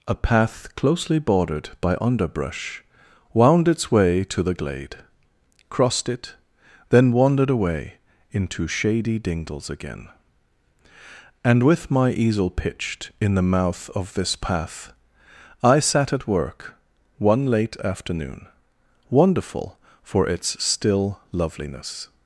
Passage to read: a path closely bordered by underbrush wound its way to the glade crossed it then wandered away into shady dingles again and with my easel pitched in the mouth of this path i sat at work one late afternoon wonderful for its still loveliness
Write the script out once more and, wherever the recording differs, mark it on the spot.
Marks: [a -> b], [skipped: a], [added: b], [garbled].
a path closely bordered by underbrush wound its way to the glade crossed it then wandered away into shady dingles again and with my easel pitched in the mouth of this path i sat at work one late afternoon wonderful for its still loveliness